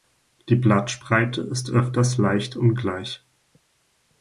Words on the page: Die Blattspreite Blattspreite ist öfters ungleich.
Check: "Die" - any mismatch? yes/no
no